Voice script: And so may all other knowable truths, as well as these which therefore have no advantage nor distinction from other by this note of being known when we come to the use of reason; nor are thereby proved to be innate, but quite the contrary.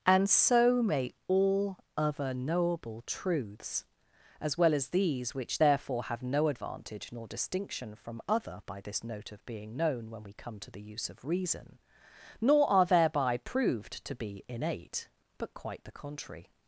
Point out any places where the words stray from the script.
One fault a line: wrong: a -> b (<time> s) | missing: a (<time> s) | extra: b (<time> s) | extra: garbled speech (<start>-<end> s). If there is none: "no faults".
no faults